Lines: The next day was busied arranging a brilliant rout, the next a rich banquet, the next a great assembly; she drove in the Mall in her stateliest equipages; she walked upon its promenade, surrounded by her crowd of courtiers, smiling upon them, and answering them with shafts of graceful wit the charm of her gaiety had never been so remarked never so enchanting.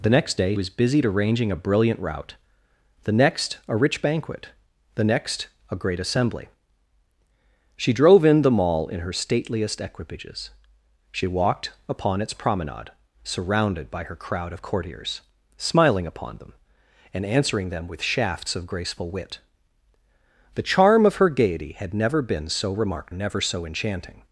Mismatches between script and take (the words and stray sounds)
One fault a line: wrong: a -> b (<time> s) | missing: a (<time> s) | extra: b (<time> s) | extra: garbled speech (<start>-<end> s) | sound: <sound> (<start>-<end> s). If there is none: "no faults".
no faults